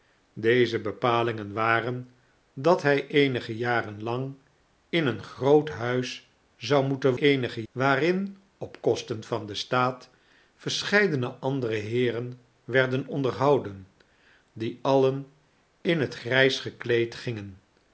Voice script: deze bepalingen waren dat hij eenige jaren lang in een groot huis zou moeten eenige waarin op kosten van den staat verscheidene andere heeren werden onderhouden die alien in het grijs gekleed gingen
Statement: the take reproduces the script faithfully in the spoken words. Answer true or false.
true